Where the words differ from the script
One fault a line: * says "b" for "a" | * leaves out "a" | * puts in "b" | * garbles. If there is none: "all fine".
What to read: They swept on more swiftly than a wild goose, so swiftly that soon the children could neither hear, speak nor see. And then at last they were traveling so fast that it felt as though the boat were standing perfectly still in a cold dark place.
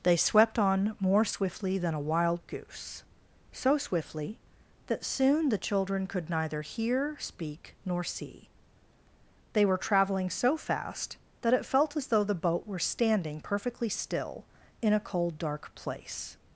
* leaves out "And then at last"